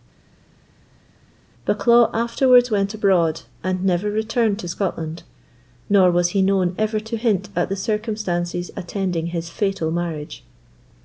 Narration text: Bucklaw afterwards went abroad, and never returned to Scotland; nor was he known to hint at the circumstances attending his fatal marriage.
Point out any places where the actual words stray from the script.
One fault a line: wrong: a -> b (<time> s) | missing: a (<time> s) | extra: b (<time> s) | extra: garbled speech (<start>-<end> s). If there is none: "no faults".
extra: ever (6.8 s)